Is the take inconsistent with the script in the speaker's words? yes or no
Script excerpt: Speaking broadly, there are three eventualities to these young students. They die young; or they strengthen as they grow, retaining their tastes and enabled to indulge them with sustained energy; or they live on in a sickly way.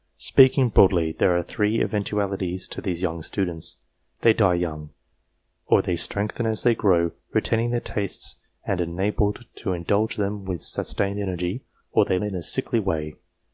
yes